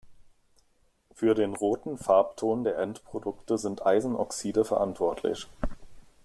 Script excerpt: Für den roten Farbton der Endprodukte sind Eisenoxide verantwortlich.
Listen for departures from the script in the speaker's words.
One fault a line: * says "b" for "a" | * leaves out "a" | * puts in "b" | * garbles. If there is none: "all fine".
all fine